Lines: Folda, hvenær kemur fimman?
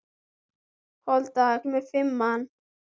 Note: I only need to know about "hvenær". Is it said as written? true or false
false